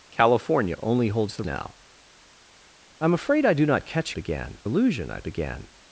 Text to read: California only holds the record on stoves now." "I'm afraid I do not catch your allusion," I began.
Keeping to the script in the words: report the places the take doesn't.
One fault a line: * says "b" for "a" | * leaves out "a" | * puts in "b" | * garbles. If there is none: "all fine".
* leaves out "record on stoves"
* says "began" for "your"